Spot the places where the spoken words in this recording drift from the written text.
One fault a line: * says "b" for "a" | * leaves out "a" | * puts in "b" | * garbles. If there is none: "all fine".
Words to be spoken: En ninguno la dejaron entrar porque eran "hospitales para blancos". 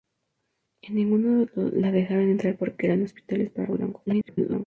* garbles